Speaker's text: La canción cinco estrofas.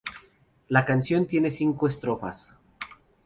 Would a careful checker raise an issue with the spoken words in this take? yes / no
yes